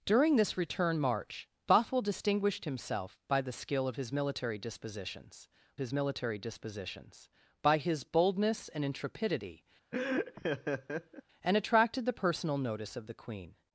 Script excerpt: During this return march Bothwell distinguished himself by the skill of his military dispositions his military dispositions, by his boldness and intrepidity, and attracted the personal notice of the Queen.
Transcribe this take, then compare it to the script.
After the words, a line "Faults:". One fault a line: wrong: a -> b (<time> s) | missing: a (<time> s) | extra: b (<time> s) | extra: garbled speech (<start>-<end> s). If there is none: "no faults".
During this return march Bothwell distinguished himself by the skill of his military dispositions his military dispositions, by his boldness and intrepidity, and attracted the personal notice of the Queen.
Faults:
no faults